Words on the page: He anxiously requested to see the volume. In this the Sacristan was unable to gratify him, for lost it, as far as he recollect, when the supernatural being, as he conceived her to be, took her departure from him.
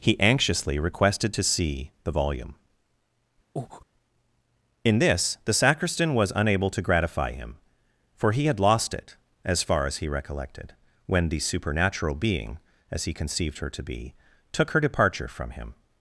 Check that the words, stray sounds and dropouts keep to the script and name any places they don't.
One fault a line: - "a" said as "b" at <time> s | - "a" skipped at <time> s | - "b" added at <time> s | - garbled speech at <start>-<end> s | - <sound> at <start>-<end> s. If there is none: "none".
- breath at 3.6-3.9 s
- "he had" added at 8.3 s
- "recollect" said as "recollected" at 10.1 s